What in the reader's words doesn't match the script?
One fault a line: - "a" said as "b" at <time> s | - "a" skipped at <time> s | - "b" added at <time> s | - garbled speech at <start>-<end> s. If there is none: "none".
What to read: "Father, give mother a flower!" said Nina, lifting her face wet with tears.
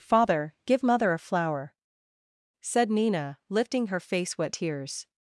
- "with" skipped at 4.5 s